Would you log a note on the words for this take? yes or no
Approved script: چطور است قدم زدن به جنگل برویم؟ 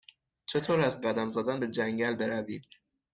no